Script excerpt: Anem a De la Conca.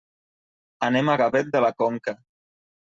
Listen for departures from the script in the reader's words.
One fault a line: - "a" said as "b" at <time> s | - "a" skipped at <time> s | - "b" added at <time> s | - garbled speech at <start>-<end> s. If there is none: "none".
- "Gavet" added at 1.2 s